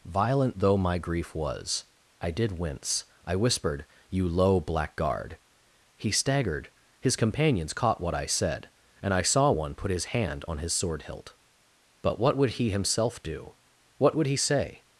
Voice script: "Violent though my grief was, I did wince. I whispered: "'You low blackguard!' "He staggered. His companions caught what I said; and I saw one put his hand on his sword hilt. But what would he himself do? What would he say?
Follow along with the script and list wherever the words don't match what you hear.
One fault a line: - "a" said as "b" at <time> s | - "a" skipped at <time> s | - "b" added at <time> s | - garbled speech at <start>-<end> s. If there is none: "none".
none